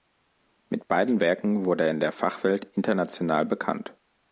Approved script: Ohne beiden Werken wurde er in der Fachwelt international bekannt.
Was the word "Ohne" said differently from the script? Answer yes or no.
yes